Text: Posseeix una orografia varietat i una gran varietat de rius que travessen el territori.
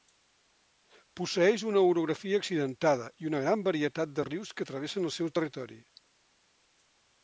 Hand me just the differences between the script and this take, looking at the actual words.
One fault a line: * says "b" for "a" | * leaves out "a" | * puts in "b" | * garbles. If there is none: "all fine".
* says "accidentada" for "varietat"
* puts in "seu"